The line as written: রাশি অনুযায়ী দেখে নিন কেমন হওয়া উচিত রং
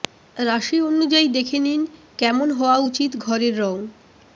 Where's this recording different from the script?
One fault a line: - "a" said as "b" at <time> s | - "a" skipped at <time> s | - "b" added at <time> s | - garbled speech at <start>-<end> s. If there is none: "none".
- "ঘরের" added at 3.2 s